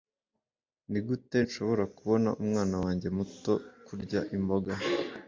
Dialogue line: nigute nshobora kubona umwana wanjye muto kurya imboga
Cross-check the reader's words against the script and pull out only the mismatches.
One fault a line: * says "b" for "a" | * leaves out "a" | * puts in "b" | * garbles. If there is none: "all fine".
all fine